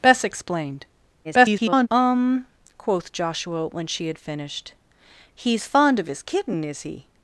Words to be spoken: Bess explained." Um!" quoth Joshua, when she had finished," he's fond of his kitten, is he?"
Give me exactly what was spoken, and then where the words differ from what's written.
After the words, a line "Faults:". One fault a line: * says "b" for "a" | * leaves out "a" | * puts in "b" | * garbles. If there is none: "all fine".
Bess explained." [garbled] Um!" quoth Joshua, when she had finished," he's fond of his kitten, is he?"
Faults:
* garbles